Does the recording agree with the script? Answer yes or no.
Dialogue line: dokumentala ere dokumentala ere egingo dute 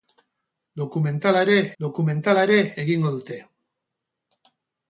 yes